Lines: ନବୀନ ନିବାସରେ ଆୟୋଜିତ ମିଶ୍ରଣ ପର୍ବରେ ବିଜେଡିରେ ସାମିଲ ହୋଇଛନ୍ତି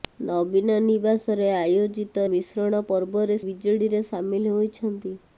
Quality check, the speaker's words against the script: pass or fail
pass